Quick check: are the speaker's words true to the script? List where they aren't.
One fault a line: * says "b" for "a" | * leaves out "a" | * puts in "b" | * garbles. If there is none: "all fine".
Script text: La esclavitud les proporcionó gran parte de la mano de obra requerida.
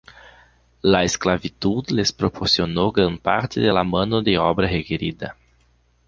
all fine